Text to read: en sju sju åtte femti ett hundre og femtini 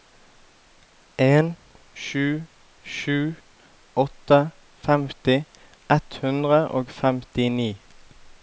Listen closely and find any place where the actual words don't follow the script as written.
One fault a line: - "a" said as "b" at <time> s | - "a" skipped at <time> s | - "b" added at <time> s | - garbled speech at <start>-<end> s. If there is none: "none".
none